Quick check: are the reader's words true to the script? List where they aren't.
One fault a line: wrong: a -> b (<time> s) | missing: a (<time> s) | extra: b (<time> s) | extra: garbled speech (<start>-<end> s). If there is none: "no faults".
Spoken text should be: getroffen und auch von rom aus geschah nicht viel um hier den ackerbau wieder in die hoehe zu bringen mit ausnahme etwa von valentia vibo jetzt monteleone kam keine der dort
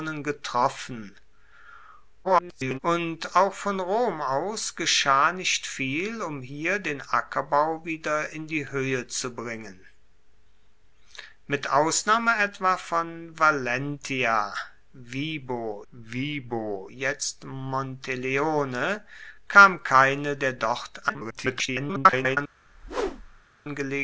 extra: garbled speech (2.2-2.8 s)
extra: vibo (15.9 s)
extra: garbled speech (21.1-22.4 s)